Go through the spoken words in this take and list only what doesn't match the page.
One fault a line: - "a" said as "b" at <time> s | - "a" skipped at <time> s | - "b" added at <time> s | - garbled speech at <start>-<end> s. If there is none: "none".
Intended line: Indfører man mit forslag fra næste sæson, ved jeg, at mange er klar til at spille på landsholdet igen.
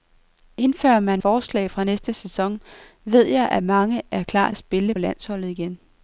- "mit" skipped at 1.2 s
- "til" skipped at 4.5 s
- "på" skipped at 4.9 s